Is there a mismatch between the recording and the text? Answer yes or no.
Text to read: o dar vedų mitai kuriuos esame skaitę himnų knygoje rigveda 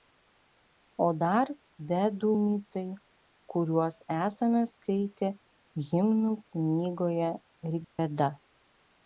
no